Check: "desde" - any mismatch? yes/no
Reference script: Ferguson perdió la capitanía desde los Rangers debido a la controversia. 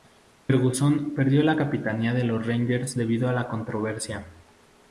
yes